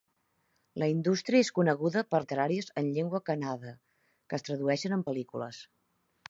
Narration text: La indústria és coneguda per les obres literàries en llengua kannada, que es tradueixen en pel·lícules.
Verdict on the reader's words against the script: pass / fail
fail